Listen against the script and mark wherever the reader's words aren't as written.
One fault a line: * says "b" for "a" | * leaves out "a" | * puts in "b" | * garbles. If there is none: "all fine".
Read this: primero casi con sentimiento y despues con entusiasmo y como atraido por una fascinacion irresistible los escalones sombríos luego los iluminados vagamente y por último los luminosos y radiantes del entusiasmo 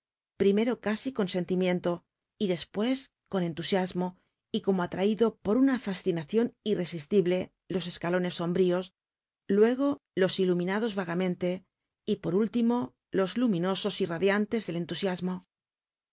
all fine